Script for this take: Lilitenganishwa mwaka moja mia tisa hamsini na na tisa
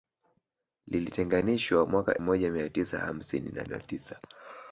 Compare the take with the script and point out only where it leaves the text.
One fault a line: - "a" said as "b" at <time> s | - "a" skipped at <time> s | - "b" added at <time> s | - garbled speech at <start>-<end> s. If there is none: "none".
none